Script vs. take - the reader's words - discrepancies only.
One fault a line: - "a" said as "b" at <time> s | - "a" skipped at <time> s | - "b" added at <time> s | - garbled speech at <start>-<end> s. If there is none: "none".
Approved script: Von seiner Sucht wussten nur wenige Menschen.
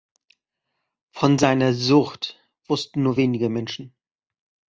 none